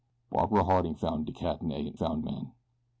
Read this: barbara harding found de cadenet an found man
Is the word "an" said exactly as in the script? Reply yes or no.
yes